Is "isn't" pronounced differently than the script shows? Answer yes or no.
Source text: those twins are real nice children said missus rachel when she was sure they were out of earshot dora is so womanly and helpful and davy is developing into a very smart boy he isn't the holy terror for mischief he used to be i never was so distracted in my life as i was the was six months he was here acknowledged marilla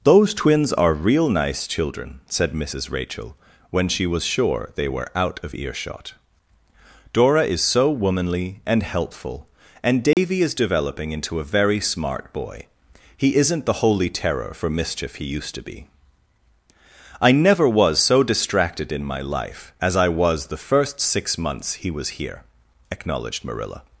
no